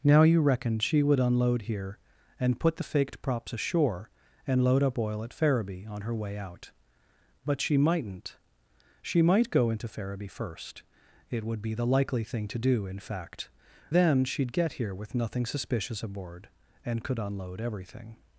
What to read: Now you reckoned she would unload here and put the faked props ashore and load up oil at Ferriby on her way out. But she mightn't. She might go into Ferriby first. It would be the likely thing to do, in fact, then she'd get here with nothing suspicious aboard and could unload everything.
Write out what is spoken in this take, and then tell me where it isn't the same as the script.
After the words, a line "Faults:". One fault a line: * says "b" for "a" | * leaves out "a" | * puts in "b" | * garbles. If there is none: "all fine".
Now you reckoned she would unload here and put the faked props ashore and load up oil at Ferriby on her way out. But she mightn't. She might go into Ferriby first. It would be the likely thing to do, in fact, then she'd get here with nothing suspicious aboard and could unload everything.
Faults:
all fine